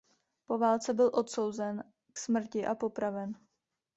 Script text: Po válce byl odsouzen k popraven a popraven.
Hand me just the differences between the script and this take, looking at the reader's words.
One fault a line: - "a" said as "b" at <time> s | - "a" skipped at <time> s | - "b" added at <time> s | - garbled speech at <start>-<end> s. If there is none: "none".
- "popraven" said as "smrti" at 2.2 s